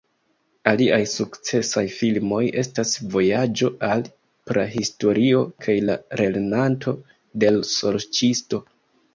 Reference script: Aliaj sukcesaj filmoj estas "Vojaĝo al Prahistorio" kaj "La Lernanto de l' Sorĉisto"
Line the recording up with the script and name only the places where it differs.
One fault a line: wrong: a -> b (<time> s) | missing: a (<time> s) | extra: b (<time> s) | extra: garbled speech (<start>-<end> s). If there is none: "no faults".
no faults